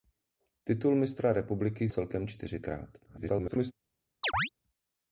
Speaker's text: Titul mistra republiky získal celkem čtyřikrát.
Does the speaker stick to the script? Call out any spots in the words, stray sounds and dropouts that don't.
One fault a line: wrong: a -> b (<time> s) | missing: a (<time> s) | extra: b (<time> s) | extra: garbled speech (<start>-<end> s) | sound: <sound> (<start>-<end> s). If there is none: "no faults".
missing: získal (1.9 s)
extra: garbled speech (3.0-3.7 s)
sound: chirp (4.2-4.5 s)